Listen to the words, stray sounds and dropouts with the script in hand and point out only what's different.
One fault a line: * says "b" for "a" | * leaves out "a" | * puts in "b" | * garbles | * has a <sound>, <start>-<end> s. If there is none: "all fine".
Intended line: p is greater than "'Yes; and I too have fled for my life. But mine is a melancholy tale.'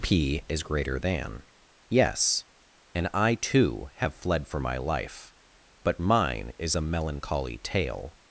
all fine